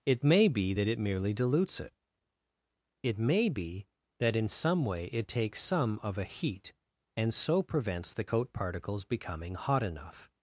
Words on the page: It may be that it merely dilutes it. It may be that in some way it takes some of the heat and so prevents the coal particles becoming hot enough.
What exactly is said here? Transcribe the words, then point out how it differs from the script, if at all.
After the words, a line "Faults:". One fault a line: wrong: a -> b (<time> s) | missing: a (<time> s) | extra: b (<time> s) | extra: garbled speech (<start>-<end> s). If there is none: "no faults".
It may be that it merely dilutes it. It may be that in some way it takes some of a heat and so prevents the coat particles becoming hot enough.
Faults:
wrong: the -> a (6.2 s)
wrong: coal -> coat (8.2 s)